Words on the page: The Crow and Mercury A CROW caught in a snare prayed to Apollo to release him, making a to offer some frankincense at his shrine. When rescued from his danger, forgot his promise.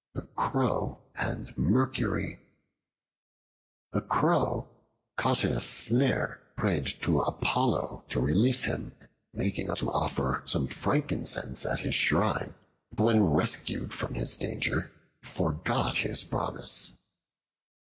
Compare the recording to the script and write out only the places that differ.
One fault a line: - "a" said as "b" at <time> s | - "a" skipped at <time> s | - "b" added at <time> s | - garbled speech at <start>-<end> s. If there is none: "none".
none